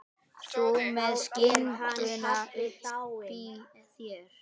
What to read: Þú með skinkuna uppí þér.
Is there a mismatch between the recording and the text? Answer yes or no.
no